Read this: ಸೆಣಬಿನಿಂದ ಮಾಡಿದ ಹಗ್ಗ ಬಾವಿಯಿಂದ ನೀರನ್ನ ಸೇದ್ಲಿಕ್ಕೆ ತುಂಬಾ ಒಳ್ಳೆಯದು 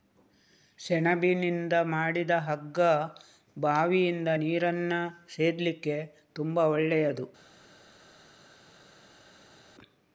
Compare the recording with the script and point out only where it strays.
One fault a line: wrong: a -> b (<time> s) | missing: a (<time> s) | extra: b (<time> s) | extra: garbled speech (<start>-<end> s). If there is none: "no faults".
no faults